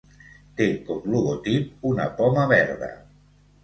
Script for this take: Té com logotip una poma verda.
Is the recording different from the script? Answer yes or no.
no